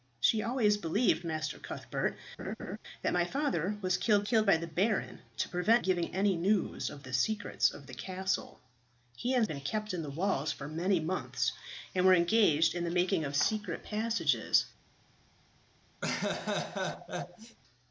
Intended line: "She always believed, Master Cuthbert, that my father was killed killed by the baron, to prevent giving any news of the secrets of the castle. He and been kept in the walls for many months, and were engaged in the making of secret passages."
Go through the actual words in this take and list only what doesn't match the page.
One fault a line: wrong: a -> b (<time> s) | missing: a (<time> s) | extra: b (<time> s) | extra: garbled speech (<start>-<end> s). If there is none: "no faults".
no faults